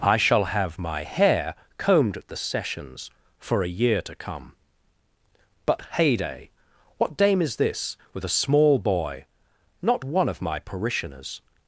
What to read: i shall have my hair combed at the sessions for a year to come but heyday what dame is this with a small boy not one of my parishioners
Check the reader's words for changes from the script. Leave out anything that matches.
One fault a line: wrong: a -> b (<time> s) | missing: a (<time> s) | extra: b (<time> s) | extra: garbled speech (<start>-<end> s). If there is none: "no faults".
no faults